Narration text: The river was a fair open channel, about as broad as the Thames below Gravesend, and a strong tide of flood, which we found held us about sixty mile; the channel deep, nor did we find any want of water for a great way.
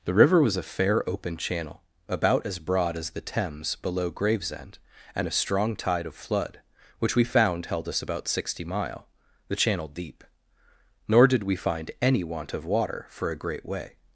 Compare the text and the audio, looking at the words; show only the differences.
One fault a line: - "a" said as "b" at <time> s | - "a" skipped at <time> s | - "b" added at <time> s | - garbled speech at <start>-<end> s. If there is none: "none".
none